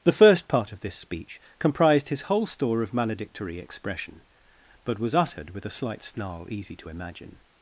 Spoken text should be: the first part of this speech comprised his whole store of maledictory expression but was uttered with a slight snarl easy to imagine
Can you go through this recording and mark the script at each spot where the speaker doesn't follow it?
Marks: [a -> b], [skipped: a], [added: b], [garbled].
the first part of this speech comprised his whole store of maledictory expression but was uttered with a slight snarl easy to imagine